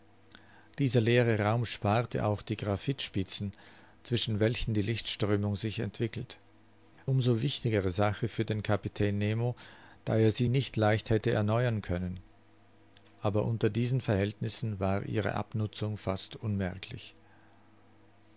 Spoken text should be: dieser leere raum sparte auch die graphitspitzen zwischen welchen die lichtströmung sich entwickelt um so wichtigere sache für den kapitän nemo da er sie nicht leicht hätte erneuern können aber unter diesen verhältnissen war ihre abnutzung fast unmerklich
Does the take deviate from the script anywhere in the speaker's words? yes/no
no